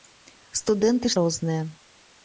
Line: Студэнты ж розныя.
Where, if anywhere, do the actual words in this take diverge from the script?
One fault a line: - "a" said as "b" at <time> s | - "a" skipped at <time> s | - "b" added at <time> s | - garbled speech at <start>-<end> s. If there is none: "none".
none